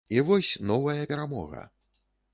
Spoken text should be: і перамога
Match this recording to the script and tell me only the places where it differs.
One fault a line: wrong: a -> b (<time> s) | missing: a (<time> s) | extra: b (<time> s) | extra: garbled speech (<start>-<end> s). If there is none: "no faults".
extra: вось новая (0.3 s)